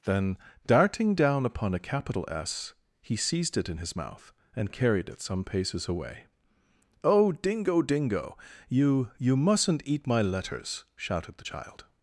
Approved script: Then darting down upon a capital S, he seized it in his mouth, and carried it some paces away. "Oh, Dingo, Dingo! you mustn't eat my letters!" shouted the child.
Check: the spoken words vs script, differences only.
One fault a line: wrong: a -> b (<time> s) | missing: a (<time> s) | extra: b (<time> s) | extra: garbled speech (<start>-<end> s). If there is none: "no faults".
extra: you (9.2 s)